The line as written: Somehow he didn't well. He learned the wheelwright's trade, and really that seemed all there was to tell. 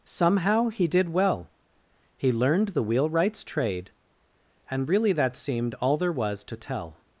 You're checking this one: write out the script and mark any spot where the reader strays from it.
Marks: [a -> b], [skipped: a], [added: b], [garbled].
Somehow he [didn't -> did] well. He learned the wheelwright's trade, and really that seemed all there was to tell.